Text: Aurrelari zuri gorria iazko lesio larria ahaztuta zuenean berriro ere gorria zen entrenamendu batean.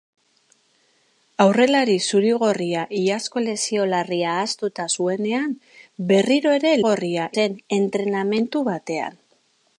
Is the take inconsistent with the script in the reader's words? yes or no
no